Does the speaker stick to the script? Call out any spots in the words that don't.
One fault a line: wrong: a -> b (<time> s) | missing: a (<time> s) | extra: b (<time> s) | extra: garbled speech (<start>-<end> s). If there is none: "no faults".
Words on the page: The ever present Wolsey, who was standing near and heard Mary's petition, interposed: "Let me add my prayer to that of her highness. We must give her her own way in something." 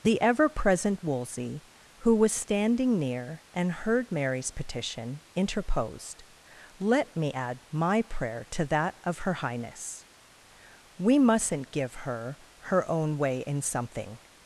wrong: must -> mustn't (11.2 s)